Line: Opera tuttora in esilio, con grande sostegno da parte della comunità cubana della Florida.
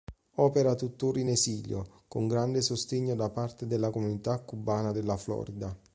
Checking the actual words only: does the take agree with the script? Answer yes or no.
yes